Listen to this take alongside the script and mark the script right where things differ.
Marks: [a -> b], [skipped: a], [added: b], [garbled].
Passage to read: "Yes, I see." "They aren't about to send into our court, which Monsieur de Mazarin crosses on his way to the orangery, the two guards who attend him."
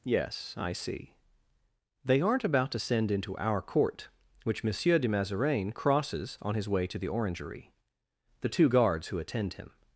"Yes, I see." "They aren't about to send into our court, which Monsieur de Mazarin crosses on his way to the orangery, the two guards who attend him."